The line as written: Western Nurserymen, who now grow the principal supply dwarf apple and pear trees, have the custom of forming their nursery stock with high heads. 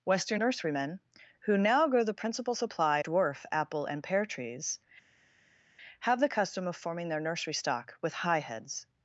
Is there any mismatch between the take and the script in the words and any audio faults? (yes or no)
no